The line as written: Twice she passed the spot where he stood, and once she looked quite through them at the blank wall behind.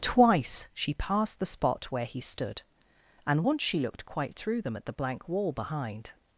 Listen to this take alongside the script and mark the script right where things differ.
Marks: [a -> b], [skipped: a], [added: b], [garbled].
Twice she passed the spot where he stood, and once she looked quite through them at the blank wall behind.